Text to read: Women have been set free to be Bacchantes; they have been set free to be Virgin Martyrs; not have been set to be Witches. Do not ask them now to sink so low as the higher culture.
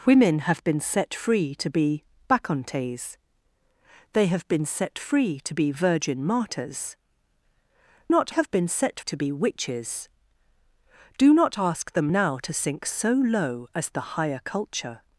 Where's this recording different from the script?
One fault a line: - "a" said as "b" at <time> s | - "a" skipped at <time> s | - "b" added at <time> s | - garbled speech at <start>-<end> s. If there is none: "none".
none